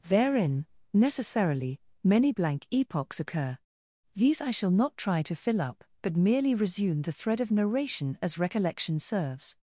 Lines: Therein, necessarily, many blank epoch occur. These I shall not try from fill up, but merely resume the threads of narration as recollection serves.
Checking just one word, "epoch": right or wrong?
wrong